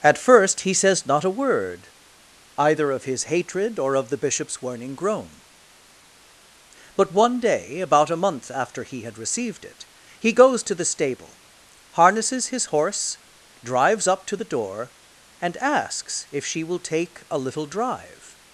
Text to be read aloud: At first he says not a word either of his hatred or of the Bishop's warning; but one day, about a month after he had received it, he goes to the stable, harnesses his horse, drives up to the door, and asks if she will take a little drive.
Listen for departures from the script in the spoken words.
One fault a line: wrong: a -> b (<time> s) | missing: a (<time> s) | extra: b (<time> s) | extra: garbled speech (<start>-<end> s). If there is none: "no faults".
extra: groan (5.0 s)